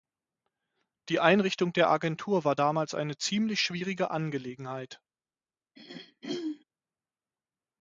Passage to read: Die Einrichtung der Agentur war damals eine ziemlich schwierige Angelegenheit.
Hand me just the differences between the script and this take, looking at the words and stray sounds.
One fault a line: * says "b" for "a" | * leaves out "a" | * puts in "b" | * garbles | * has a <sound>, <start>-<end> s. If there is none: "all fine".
* has a throat clearing, 5.8-6.6 s